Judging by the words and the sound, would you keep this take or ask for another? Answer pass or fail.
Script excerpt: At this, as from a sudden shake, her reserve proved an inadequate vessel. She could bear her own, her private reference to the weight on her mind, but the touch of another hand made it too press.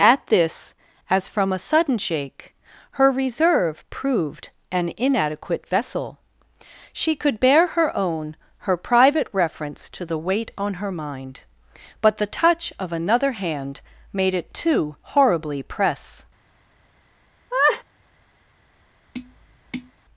fail